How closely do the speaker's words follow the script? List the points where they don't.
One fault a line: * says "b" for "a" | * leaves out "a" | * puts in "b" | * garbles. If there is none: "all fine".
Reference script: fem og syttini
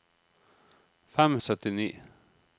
all fine